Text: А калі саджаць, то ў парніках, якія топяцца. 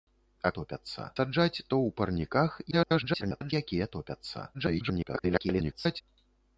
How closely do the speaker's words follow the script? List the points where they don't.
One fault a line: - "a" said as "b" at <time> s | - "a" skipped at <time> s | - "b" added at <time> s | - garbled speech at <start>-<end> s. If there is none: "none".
- "калі" said as "топяцца" at 0.6 s
- garbled speech at 2.7-3.5 s
- garbled speech at 4.5-6.0 s